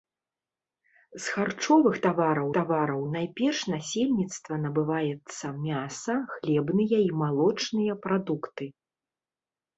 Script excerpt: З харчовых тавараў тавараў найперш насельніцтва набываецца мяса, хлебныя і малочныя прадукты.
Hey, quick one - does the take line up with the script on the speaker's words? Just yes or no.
yes